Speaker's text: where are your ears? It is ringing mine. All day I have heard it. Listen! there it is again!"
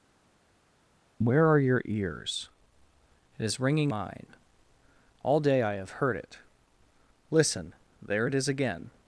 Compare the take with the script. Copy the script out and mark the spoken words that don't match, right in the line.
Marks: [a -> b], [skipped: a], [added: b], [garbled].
where are your ears? It is ringing mine. All day I have heard it. Listen! there it is again!"